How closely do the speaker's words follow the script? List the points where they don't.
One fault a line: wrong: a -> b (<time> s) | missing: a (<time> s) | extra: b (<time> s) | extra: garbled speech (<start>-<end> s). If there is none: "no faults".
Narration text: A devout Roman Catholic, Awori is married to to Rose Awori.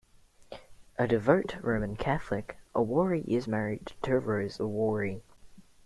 missing: to (4.2 s)